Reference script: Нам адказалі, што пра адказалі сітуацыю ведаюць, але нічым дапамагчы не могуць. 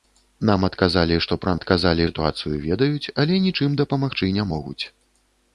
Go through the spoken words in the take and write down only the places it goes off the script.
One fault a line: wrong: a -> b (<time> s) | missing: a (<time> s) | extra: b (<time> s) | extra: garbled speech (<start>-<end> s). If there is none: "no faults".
no faults